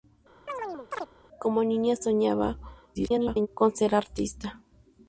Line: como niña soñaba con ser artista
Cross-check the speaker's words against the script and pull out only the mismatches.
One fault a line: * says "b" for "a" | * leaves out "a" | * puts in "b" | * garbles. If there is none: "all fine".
* garbles